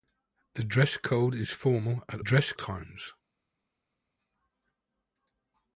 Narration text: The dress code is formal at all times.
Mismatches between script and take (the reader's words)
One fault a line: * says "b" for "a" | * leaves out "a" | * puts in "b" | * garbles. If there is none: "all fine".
* says "dress" for "all"